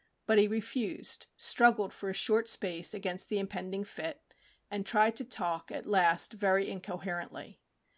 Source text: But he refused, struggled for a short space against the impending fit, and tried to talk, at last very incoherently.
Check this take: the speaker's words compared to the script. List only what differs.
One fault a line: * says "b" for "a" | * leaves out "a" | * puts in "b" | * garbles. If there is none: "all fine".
all fine